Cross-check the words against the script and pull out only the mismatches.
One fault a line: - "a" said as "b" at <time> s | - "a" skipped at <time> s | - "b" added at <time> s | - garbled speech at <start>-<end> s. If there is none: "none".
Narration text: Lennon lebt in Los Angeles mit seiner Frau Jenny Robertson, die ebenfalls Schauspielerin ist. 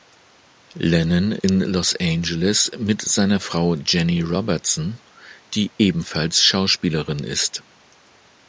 - "lebt" skipped at 1.3 s